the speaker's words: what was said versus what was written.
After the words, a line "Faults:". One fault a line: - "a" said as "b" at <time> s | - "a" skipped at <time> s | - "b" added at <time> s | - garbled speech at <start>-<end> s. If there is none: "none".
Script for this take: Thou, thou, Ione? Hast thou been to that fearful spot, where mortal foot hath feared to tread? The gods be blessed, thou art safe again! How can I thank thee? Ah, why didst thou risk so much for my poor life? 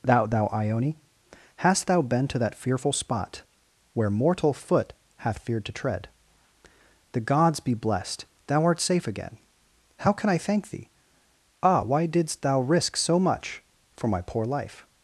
Thou, thou, Ione? Hast thou been to that fearful spot, where mortal foot hath feared to tread? The gods be blessed, thou art safe again! How can I thank thee? Ah, why didst thou risk so much for my poor life?
Faults:
none